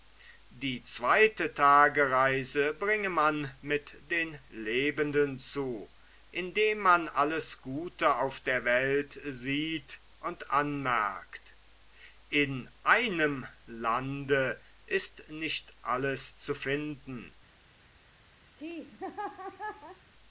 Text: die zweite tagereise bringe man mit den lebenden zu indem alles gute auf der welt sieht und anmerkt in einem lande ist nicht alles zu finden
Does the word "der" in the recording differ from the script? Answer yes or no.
no